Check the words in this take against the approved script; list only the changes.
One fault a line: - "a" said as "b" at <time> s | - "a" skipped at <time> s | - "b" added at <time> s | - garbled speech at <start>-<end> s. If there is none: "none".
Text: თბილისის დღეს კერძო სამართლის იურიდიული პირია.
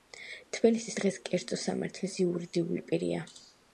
none